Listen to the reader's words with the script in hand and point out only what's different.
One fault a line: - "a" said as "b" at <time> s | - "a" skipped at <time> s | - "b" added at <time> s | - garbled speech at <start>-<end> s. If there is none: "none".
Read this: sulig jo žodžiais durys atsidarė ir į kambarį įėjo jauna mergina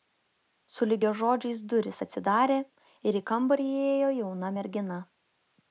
none